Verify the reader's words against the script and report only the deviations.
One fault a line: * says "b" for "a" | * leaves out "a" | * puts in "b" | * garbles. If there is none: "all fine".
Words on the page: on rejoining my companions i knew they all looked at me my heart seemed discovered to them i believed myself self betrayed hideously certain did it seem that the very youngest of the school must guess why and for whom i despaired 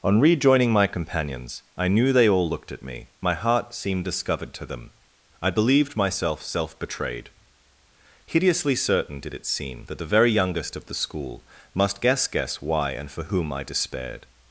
* puts in "guess"